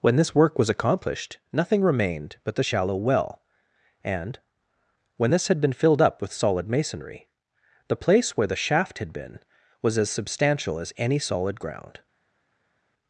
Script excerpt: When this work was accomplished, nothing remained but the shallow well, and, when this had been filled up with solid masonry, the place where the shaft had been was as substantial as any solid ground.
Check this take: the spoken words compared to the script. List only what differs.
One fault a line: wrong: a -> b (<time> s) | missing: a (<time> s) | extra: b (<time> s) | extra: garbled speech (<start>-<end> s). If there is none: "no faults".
no faults